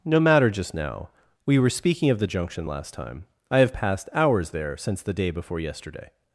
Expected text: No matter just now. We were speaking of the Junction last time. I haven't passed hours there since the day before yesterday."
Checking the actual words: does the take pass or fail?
fail